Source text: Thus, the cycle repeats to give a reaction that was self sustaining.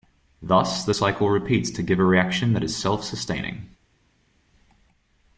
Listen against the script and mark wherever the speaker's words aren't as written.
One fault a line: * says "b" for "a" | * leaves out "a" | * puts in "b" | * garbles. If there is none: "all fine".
* says "is" for "was"